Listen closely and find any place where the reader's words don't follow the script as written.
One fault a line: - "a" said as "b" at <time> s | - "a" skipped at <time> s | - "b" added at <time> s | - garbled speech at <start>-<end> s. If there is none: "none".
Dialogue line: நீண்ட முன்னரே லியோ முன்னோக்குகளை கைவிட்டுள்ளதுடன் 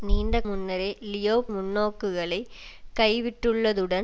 none